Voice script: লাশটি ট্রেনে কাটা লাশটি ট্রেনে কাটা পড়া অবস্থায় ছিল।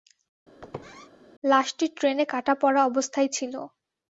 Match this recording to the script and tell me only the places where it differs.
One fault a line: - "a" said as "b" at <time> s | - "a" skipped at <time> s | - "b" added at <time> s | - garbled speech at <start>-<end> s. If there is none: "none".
- "লাশটি ট্রেনে কাটা" skipped at 2.5 s